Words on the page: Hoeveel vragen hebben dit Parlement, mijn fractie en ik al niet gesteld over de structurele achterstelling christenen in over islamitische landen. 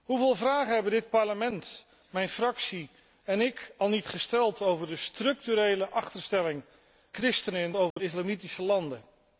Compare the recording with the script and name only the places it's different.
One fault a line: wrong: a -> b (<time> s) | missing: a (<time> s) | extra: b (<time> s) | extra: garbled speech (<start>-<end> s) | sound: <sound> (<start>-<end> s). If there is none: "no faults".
sound: dropout (7.9-8.0 s)